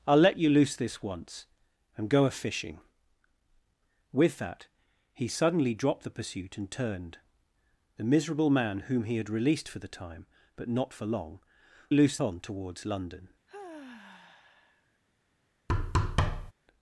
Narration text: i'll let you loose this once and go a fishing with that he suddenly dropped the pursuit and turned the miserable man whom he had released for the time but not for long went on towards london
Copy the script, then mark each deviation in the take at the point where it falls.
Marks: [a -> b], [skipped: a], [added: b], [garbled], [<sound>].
i'll let you loose this once and go a fishing with that he suddenly dropped the pursuit and turned the miserable man whom he had released for the time but not for long [went -> loose] on towards london [sigh] [thud]